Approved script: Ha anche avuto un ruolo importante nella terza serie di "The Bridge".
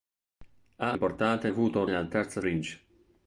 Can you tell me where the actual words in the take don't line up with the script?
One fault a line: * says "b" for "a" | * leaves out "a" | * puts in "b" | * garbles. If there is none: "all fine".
* says "importante" for "anche"
* leaves out "ruolo importante"
* leaves out "serie di The"